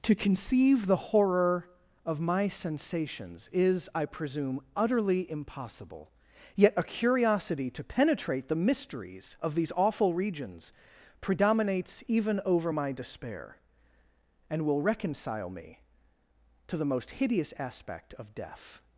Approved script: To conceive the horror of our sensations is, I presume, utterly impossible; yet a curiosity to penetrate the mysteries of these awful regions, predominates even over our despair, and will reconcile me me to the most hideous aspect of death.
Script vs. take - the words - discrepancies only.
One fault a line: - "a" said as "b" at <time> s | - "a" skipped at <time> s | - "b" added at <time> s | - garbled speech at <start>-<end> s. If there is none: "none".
- "our" said as "my" at 2.2 s
- "our" said as "my" at 12.7 s
- "me" skipped at 15.8 s